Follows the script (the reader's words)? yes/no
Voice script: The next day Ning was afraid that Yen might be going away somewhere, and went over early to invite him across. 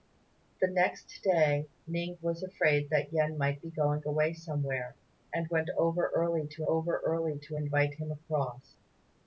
no